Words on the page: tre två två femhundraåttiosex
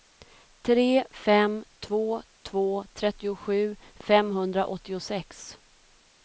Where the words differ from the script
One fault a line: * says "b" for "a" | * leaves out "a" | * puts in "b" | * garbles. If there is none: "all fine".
* puts in "fem"
* puts in "trettiosju"